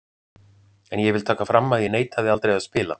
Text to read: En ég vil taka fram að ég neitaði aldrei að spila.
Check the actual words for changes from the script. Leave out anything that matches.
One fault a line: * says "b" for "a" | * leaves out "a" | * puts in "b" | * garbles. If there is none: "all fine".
all fine